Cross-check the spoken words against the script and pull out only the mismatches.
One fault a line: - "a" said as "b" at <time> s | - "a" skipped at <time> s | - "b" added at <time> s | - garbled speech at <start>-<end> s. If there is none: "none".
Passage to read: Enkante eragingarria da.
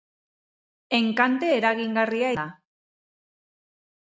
none